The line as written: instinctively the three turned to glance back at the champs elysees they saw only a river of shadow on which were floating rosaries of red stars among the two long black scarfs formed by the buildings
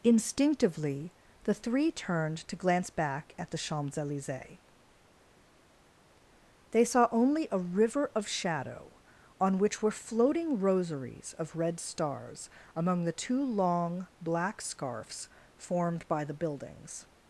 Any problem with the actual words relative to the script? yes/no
no